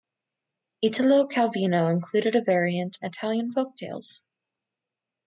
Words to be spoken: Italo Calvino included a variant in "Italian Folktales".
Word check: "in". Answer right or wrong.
wrong